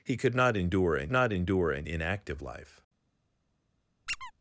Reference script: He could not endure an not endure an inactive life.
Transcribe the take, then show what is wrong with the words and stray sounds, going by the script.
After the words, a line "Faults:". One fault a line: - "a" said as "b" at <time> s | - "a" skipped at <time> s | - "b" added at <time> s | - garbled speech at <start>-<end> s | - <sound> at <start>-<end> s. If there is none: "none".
He could not endure an not endure an inactive life.
Faults:
- squeak at 4.1-4.3 s